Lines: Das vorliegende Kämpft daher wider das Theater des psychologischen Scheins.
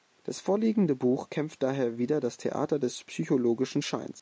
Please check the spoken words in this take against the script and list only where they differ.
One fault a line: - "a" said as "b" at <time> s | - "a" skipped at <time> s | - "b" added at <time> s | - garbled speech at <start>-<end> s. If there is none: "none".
- "Buch" added at 0.9 s